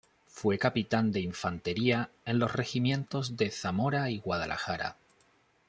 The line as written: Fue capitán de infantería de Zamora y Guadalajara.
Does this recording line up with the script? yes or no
no